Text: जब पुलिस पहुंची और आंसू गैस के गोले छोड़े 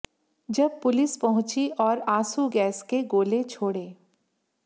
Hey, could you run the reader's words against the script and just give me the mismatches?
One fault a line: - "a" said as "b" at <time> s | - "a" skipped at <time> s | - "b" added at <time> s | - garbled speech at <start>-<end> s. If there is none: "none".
none